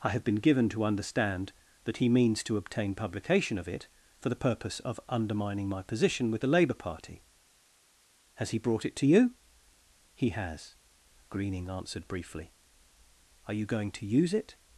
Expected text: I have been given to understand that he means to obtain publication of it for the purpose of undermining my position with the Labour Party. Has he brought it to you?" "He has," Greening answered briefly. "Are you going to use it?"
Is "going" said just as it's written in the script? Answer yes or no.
yes